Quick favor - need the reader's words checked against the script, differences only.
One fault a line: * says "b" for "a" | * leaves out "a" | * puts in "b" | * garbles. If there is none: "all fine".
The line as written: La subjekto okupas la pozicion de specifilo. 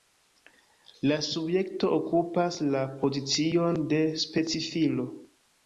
all fine